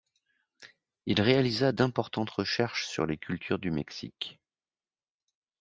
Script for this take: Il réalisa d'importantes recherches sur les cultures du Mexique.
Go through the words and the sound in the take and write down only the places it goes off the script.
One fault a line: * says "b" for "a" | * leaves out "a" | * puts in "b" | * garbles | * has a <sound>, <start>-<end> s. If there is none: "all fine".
all fine